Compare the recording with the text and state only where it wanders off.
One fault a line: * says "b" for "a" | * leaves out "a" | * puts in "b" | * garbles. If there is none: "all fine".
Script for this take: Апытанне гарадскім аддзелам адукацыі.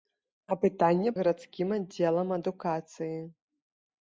all fine